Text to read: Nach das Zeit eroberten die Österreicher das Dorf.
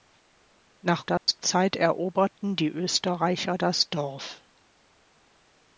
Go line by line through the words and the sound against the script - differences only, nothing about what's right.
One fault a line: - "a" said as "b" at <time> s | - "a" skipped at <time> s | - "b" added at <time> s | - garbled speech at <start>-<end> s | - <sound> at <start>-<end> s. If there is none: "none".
- dropout at 1.2-1.3 s